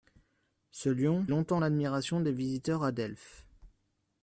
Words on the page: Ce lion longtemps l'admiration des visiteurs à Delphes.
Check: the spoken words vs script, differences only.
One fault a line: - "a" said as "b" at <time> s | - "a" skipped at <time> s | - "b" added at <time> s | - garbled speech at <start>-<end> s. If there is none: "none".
none